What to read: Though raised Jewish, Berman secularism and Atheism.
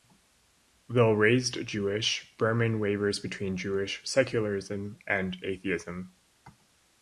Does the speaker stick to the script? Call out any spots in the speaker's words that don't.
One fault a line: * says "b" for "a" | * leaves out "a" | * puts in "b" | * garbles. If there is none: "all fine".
* puts in "wavers between Jewish"